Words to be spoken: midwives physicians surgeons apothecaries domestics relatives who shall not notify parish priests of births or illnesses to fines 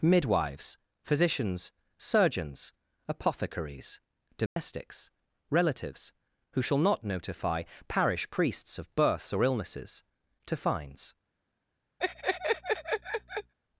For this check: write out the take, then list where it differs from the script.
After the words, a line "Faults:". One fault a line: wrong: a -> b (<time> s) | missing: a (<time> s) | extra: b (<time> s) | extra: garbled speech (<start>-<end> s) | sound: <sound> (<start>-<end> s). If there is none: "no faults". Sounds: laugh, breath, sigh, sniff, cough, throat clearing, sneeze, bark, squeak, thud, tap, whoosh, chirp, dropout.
midwives physicians surgeons apothecaries domestics relatives who shall not notify parish priests of births or illnesses to fines
Faults:
sound: dropout (4.5-4.6 s)
sound: laugh (12.0-13.5 s)